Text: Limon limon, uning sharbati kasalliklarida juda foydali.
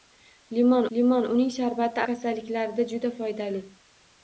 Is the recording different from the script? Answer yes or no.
no